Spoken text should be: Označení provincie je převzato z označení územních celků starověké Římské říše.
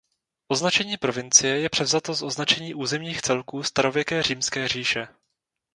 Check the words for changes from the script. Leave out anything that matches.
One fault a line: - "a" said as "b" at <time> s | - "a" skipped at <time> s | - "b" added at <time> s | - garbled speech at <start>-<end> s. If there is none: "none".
none